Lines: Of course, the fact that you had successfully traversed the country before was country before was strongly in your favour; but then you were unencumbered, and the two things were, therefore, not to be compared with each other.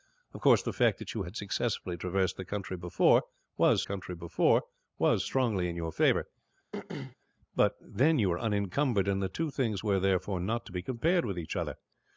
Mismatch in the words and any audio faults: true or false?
true